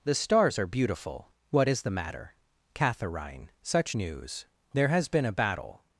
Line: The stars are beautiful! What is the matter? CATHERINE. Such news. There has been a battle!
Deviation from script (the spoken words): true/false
false